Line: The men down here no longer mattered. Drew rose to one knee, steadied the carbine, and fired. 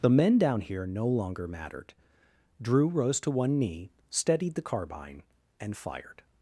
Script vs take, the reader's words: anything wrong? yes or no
no